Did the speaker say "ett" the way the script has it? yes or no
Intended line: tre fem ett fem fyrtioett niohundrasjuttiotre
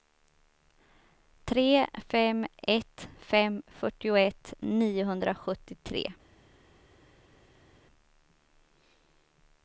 yes